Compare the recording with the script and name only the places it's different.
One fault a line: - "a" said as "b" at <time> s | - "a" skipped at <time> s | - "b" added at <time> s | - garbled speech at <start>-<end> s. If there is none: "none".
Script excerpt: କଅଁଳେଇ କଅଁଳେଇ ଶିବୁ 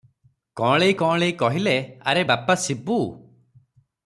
- "କହିଲେ ଆରେ ବାପା" added at 1.3 s